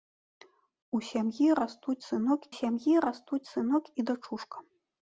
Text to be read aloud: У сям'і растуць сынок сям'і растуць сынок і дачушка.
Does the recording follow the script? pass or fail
pass